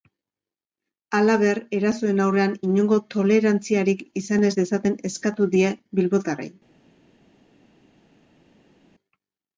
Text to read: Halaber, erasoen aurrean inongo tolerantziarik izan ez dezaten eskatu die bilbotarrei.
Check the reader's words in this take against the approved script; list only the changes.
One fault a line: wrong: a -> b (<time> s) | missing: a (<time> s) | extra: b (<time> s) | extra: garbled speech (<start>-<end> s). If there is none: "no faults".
no faults